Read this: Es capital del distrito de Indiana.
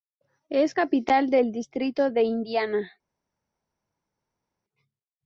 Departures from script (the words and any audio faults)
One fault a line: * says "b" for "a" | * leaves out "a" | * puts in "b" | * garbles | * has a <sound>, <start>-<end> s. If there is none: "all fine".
all fine